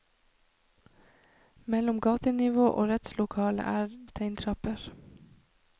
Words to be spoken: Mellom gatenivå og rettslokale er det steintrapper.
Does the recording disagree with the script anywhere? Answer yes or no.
yes